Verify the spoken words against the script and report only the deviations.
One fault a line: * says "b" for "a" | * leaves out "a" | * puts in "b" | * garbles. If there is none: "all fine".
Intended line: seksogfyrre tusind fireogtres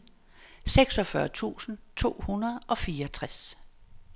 * puts in "to hundrede og"